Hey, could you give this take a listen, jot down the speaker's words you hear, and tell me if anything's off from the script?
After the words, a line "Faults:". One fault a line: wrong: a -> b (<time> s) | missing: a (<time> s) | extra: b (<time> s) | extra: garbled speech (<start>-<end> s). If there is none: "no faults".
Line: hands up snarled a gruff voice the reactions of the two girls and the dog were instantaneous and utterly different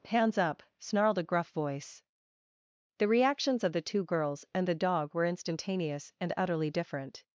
hands up snarled a gruff voice the reactions of the two girls and the dog were instantaneous and utterly different
Faults:
no faults